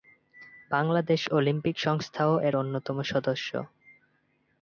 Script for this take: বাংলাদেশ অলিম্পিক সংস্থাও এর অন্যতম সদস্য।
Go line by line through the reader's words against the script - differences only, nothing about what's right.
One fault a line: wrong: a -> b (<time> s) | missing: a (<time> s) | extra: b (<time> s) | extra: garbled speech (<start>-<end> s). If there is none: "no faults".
no faults